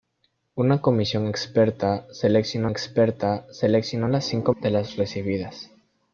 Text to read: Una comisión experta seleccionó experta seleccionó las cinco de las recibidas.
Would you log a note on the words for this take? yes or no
no